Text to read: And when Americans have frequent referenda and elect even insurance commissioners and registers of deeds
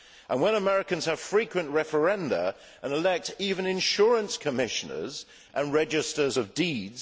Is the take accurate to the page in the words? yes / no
yes